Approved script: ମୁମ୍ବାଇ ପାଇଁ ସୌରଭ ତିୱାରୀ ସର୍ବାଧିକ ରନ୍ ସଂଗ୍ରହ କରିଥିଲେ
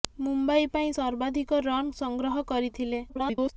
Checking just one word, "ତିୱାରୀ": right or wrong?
wrong